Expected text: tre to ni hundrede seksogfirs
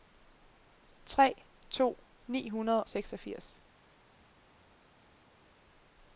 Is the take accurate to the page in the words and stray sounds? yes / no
yes